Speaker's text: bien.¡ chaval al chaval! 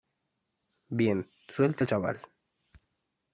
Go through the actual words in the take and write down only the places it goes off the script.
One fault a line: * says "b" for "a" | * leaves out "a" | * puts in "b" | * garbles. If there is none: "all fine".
* says "suelte" for "chaval"